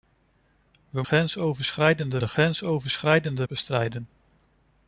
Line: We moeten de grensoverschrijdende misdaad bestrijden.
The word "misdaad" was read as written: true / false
false